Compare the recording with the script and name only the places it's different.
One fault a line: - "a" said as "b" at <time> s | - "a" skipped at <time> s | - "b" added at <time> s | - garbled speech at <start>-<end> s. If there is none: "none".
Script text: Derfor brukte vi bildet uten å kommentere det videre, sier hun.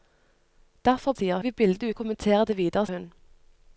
- "brukte" said as "sier" at 1.1 s
- "uten" skipped at 1.9 s
- "sier" skipped at 2.9 s